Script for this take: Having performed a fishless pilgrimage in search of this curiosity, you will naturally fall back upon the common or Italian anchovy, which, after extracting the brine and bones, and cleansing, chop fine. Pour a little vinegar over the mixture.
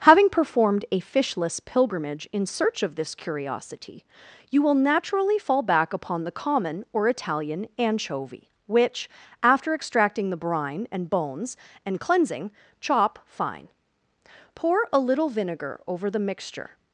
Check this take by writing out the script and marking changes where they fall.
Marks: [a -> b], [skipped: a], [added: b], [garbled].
Having performed a fishless pilgrimage in search of this curiosity, you will naturally fall back upon the common or Italian anchovy, which, after extracting the brine and bones, and cleansing, chop fine. Pour a little vinegar over the mixture.